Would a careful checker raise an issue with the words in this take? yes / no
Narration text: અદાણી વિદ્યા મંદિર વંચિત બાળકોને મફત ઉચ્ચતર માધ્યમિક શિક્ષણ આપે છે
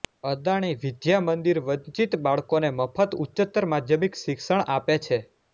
no